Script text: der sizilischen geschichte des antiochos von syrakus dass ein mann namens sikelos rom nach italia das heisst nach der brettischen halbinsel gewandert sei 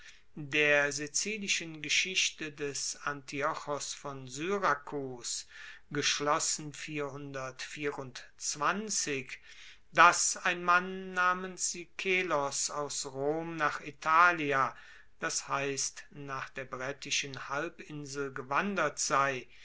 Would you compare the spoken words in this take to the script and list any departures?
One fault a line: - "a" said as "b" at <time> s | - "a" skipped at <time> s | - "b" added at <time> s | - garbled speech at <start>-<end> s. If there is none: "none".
- "aus" added at 12.7 s